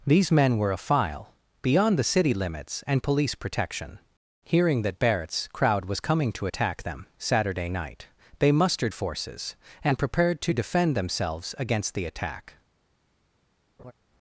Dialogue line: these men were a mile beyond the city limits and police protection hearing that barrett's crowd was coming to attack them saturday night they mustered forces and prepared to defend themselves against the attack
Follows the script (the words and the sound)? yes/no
no